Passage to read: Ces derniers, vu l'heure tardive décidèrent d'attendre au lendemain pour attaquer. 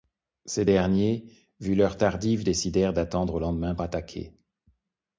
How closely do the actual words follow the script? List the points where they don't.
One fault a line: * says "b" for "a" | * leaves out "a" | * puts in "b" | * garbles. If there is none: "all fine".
* leaves out "pour"